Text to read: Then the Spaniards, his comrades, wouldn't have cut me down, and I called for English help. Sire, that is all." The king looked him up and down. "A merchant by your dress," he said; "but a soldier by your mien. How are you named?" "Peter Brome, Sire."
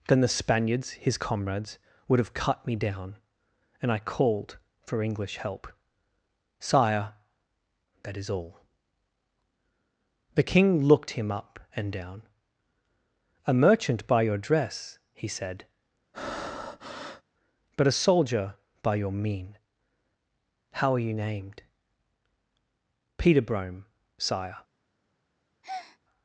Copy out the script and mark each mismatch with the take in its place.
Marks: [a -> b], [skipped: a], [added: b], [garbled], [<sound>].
Then the Spaniards, his comrades, [wouldn't -> would] have cut me down, and I called for English help. Sire, that is all." The king looked him up and down. "A merchant by your dress," he said; [breath] "but a soldier by your mien. How are you named?" "Peter Brome, Sire." [breath]